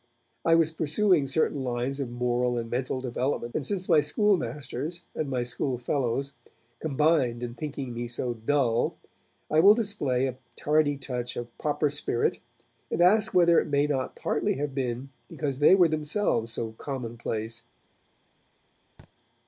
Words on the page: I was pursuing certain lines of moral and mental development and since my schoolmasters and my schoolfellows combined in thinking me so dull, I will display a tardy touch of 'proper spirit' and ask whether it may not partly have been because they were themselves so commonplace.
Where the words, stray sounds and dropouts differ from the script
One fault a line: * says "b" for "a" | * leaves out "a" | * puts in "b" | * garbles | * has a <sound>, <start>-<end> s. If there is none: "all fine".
* has a thud, 19.0-19.1 s